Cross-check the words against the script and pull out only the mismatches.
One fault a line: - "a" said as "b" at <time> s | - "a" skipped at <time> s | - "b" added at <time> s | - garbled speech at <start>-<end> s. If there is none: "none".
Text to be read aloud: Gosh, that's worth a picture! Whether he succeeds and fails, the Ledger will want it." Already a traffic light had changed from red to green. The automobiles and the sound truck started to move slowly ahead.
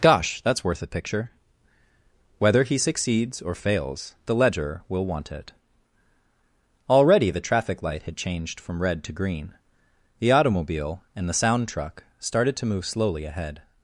- "and" said as "or" at 3.4 s
- "a" said as "the" at 7.3 s
- "automobiles" said as "automobile" at 10.3 s